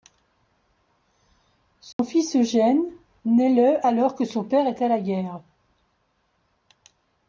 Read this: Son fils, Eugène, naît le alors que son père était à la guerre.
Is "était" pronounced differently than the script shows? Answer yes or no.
yes